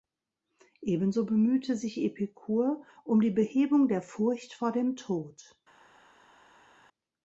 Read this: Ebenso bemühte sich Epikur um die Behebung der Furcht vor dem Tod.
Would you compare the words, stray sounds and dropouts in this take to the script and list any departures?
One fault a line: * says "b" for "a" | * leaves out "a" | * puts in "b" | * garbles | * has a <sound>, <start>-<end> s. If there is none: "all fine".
all fine